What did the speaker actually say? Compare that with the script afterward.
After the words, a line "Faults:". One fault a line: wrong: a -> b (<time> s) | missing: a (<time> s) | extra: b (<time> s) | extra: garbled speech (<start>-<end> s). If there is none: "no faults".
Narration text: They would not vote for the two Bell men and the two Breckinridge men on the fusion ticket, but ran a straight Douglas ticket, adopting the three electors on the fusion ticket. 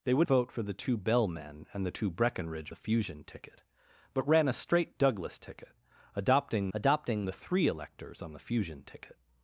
They would vote for the two Bell men and the two Breckinridge the fusion ticket, but ran a straight Douglas ticket, adopting adopting the three electors on the fusion ticket.
Faults:
missing: not (0.3 s)
missing: men on (2.7 s)
extra: adopting (6.7 s)